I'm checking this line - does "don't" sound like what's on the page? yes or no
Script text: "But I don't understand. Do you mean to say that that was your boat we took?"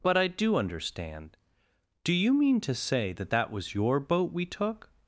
no